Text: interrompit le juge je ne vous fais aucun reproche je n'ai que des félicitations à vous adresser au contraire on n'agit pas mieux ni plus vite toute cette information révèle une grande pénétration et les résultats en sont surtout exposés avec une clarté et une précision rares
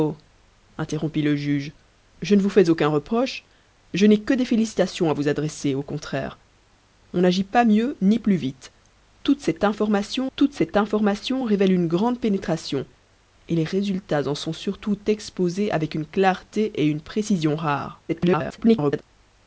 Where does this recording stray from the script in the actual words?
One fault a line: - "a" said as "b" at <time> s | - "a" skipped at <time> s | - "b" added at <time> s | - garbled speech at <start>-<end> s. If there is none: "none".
- "toute cette information" added at 10.4 s
- garbled speech at 18.1-19.0 s